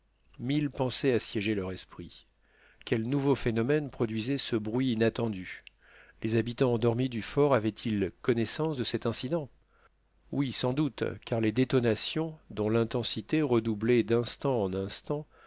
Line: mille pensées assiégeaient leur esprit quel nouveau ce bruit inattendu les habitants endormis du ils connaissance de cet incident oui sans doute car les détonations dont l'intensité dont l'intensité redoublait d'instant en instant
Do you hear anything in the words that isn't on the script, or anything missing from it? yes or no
yes